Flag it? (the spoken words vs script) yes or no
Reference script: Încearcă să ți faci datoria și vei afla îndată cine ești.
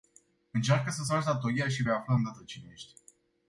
no